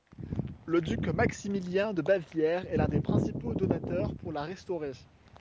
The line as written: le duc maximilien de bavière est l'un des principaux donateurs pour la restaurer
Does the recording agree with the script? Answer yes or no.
yes